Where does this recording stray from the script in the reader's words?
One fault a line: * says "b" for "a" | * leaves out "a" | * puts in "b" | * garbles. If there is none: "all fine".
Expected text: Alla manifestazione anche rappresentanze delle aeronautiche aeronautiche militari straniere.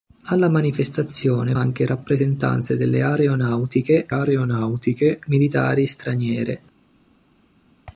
all fine